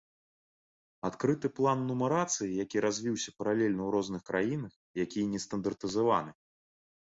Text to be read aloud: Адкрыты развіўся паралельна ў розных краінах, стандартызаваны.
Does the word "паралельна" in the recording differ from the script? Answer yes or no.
no